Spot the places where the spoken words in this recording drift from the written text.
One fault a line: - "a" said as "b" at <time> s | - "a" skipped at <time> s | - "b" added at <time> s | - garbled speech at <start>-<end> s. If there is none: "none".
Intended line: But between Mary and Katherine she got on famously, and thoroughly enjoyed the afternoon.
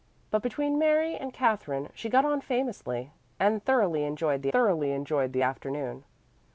- "thoroughly enjoyed the" added at 4.5 s